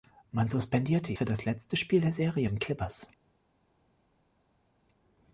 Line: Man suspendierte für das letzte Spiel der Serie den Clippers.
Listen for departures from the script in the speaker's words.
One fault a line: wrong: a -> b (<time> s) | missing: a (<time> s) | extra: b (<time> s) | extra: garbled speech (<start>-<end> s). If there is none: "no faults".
no faults